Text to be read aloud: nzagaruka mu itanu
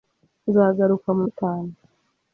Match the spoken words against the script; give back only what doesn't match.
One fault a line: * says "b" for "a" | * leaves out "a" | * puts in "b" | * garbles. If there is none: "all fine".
all fine